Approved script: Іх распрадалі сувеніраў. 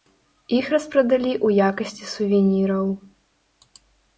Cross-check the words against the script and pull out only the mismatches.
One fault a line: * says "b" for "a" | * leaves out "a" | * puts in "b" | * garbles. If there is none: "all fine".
* puts in "ў якасці"